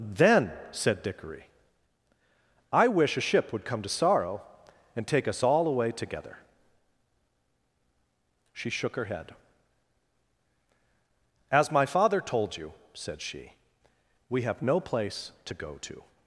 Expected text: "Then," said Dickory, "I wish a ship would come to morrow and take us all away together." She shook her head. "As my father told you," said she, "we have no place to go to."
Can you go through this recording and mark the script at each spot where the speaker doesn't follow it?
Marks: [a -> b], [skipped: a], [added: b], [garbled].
"Then," said Dickory, "I wish a ship would come to [morrow -> sorrow] and take us all away together." She shook her head. "As my father told you," said she, "we have no place to go to."